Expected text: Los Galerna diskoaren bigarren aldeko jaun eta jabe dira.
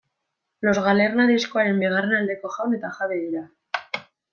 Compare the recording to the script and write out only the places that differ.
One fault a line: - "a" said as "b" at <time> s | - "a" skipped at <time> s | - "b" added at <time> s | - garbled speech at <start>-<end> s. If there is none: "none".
none